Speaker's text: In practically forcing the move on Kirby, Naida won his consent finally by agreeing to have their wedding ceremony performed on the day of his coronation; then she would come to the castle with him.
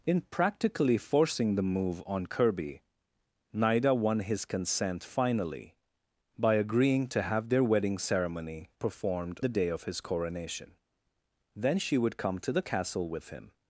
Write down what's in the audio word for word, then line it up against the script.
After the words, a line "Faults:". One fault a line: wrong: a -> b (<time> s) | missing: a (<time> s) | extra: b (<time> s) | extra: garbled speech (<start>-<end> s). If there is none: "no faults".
In practically forcing the move on Kirby, Naida won his consent finally by agreeing to have their wedding ceremony performed the day of his coronation; then she would come to the castle with him.
Faults:
missing: on (9.4 s)